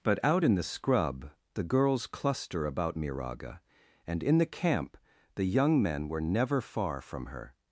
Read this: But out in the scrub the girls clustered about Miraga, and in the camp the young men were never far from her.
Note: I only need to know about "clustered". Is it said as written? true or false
false